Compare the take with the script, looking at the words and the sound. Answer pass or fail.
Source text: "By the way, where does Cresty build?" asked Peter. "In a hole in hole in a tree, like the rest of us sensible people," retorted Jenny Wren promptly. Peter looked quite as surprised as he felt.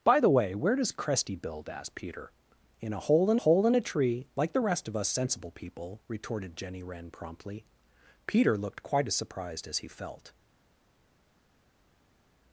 pass